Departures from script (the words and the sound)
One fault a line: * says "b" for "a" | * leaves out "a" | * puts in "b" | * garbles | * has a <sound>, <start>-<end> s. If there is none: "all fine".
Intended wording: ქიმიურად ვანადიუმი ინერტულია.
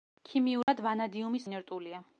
* has a dropout, 0.6-0.7 s